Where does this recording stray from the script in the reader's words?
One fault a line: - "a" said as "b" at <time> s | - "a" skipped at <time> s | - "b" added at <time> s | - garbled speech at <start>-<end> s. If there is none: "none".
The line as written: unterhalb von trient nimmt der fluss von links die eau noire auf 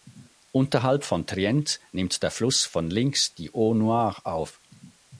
none